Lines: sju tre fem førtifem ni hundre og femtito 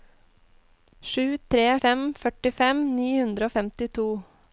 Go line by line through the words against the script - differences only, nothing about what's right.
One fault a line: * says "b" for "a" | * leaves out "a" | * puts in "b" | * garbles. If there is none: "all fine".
all fine